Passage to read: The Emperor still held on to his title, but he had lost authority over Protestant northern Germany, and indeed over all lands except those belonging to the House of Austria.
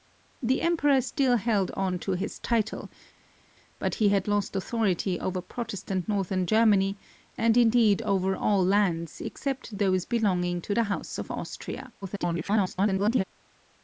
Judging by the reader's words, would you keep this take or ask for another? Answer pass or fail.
fail